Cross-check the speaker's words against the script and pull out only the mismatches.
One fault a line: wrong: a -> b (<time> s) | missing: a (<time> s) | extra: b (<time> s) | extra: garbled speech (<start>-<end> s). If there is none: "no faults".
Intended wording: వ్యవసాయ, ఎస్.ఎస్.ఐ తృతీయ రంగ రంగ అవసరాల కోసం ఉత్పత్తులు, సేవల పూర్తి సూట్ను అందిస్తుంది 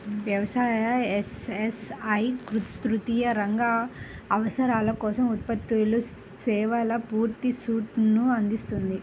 missing: రంగ (3.6 s)